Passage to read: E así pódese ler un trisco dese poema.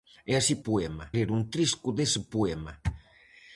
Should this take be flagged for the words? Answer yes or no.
yes